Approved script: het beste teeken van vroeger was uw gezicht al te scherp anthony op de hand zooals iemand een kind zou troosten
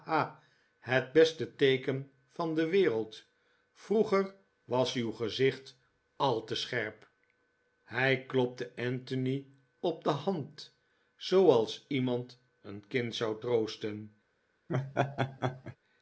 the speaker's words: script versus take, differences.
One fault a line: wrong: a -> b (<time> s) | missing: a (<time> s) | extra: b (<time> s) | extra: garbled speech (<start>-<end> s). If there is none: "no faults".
extra: de wereld (2.5 s)
extra: hij klopte (7.8 s)